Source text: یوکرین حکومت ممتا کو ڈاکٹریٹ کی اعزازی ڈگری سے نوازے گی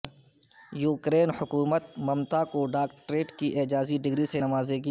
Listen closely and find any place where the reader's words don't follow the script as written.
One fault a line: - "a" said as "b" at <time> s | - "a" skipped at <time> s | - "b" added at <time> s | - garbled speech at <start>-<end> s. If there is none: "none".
none